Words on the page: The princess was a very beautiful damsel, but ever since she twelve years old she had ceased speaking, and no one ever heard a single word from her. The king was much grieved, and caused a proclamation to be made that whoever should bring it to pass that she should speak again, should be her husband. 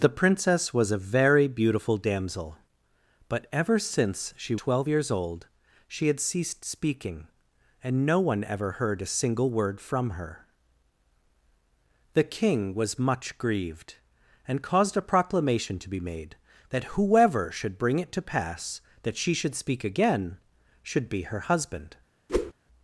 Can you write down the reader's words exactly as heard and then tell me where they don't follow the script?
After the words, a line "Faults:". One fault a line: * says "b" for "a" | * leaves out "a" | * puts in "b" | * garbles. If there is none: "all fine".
The princess was a very beautiful damsel, but ever since she twelve years old she had ceased speaking, and no one ever heard a single word from her. The king was much grieved, and caused a proclamation to be made that whoever should bring it to pass that she should speak again, should be her husband.
Faults:
all fine